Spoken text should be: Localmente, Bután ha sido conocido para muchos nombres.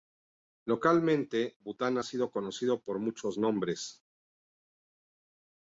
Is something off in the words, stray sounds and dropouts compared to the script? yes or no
yes